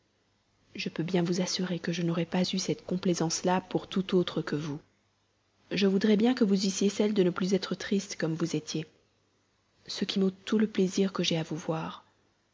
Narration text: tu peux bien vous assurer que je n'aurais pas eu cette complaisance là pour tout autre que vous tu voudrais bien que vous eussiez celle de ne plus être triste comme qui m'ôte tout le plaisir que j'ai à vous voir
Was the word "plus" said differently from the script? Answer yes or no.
no